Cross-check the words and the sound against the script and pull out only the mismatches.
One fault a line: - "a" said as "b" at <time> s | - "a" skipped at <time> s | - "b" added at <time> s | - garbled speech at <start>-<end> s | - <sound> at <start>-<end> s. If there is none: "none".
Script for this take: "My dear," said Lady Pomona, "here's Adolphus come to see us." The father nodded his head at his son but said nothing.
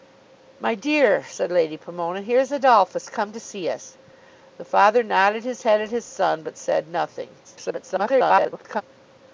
- garbled speech at 7.4-8.8 s